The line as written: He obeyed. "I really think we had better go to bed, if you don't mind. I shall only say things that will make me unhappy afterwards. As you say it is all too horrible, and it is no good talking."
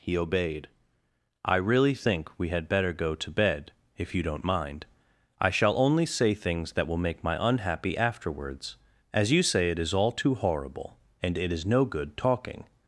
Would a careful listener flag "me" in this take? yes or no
yes